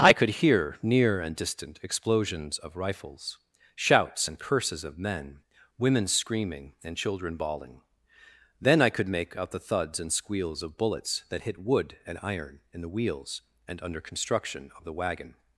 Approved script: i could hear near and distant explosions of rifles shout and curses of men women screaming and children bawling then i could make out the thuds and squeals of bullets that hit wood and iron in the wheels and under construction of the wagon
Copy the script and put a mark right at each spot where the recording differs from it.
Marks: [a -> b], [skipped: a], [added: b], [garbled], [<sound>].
i could hear near and distant explosions of rifles [shout -> shouts] and curses of men women screaming and children bawling then i could make out the thuds and squeals of bullets that hit wood and iron in the wheels and under construction of the wagon